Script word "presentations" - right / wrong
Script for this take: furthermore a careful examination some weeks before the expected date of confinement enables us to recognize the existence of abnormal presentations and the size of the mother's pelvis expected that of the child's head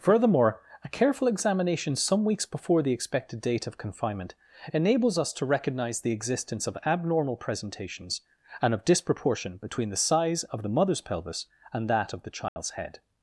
right